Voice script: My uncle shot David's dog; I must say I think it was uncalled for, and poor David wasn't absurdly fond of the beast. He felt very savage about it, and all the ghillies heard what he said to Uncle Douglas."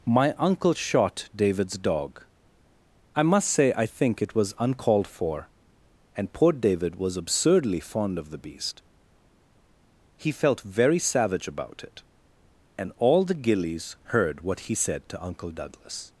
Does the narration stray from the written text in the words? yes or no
yes